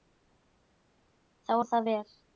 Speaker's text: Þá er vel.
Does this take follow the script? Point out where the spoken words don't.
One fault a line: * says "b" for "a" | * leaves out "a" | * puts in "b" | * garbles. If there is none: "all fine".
* puts in "það"